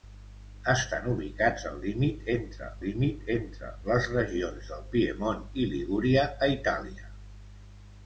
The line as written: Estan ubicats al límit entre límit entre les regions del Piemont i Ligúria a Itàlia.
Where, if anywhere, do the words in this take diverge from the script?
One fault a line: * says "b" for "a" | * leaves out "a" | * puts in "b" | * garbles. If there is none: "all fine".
all fine